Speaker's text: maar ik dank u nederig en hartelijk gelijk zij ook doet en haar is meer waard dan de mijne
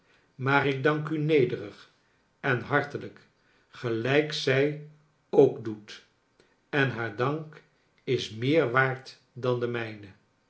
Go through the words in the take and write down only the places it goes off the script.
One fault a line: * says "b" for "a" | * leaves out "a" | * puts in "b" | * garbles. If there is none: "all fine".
* puts in "dank"